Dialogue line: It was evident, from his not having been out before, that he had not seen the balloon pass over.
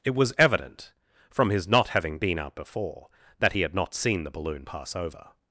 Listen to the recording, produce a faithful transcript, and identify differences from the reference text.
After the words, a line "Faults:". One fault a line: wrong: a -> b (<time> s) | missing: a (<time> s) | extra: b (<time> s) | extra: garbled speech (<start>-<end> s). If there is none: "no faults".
It was evident, from his not having been out before, that he had not seen the balloon pass over.
Faults:
no faults